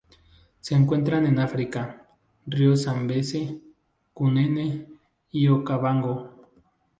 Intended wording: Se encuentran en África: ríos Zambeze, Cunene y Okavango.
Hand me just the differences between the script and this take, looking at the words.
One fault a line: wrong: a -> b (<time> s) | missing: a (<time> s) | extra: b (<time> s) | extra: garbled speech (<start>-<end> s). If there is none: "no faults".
no faults